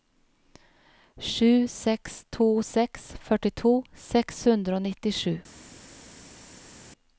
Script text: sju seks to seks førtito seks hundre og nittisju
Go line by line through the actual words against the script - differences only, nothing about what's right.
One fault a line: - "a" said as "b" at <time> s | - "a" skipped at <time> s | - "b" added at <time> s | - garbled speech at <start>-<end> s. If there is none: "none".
none